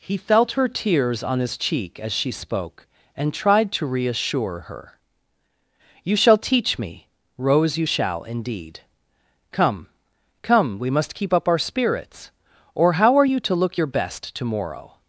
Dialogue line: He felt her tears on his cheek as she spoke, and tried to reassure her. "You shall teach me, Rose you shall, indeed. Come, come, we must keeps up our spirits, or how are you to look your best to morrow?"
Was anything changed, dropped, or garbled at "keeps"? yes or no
yes